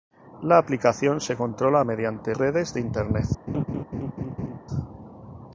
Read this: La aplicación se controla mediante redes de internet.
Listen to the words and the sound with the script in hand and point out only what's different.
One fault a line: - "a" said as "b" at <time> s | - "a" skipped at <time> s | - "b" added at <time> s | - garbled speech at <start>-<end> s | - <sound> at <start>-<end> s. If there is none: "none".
- laugh at 3.5-4.6 s